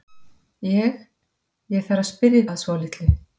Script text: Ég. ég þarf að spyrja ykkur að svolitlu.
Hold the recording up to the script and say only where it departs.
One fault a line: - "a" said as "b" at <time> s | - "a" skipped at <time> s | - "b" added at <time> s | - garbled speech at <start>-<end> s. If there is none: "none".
- "ykkur" skipped at 2.4 s